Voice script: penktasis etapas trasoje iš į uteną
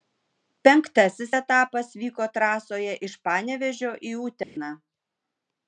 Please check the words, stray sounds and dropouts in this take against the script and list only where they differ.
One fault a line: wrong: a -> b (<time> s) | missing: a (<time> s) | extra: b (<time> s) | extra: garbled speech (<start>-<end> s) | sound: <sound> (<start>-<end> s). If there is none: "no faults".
extra: vyko (2.0 s)
extra: panevėžio (3.3 s)
sound: dropout (4.4-4.6 s)